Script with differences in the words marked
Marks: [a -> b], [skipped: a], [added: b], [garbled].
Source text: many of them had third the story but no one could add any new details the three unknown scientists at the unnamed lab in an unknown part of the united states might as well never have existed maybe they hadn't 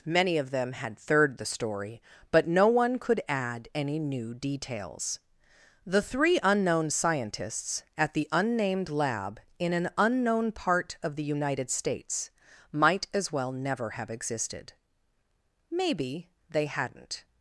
many of them had third the story but no one could add any new details the three unknown scientists at the unnamed lab in an unknown part of the united states might as well never have existed maybe they hadn't